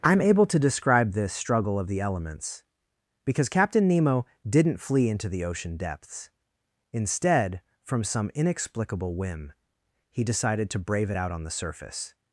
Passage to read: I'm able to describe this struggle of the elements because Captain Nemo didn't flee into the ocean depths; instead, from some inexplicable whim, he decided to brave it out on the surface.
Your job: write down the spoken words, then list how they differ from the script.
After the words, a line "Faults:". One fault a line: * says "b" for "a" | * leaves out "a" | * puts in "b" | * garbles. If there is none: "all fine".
I'm able to describe this struggle of the elements because Captain Nemo didn't flee into the ocean depths; instead, from some inexplicable whim, he decided to brave it out on the surface.
Faults:
all fine